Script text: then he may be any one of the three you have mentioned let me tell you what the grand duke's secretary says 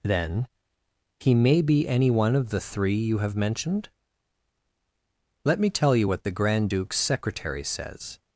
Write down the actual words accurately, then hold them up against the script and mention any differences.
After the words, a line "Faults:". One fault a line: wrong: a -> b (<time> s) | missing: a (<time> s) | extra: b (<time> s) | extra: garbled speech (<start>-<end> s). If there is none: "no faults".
then he may be any one of the three you have mentioned let me tell you what the grand duke's secretary says
Faults:
no faults